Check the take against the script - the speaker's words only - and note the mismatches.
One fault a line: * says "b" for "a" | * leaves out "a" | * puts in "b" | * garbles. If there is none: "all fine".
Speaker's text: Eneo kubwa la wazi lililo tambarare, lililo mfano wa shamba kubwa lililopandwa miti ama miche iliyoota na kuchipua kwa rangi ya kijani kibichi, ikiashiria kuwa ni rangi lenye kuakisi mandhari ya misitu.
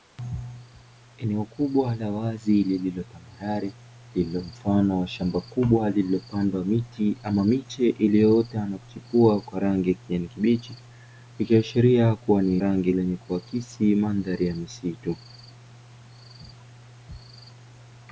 all fine